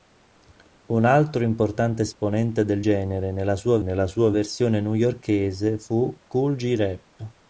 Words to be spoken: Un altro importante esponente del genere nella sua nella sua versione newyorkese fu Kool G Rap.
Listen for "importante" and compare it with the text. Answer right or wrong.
right